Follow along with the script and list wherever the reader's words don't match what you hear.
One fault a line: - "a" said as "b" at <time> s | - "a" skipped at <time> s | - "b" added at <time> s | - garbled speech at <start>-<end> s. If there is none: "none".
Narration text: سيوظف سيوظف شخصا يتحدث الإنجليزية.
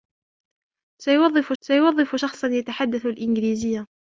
none